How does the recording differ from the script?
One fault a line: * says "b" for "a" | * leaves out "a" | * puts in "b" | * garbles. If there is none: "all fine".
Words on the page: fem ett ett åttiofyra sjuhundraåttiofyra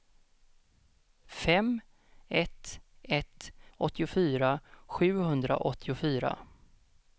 all fine